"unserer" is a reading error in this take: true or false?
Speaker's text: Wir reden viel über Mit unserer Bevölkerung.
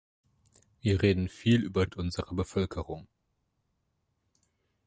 false